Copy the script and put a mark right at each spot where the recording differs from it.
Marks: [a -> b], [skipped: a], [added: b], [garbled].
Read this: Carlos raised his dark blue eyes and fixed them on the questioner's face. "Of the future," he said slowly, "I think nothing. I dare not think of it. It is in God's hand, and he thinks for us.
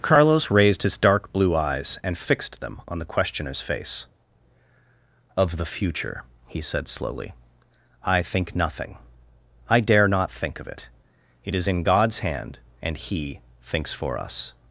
Carlos raised his dark blue eyes and fixed them on the questioner's face. "Of the future," he said slowly, "I think nothing. I dare not think of it. It is in God's hand, and he thinks for us.